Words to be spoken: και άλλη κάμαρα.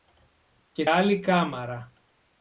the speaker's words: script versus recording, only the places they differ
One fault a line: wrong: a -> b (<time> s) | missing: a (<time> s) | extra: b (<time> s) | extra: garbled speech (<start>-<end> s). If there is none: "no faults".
no faults